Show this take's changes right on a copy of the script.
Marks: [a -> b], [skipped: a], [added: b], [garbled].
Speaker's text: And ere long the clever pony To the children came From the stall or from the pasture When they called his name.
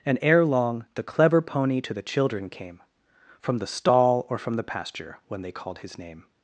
And ere long the clever pony To the children came From the stall or from the pasture When they called his name.